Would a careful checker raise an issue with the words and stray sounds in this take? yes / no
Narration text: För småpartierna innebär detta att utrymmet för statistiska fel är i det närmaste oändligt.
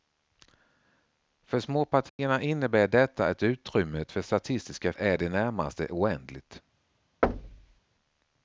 yes